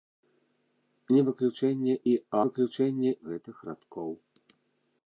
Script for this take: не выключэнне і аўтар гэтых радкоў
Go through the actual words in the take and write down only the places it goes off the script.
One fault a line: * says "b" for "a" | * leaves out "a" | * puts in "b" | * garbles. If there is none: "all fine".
* says "выключэнне" for "аўтар"